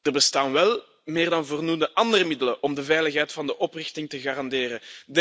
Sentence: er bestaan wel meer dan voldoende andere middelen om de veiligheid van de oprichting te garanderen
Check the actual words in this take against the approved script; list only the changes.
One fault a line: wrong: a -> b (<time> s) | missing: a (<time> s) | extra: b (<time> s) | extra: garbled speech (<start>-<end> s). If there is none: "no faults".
no faults